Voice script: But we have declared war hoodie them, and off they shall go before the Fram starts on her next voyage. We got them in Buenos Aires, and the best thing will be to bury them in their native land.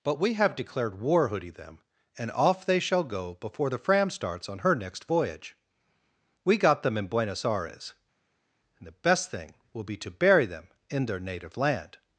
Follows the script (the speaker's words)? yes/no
yes